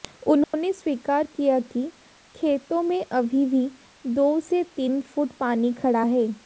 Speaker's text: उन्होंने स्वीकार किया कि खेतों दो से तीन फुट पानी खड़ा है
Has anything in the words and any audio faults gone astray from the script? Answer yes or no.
yes